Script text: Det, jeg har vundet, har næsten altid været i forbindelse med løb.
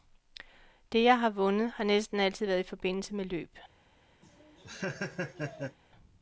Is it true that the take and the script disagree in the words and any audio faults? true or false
true